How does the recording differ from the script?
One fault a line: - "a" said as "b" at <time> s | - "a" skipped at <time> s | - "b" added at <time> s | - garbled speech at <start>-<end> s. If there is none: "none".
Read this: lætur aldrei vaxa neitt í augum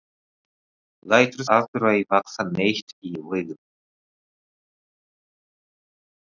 none